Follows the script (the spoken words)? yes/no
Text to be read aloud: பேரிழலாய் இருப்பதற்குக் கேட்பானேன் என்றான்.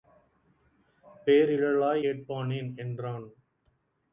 no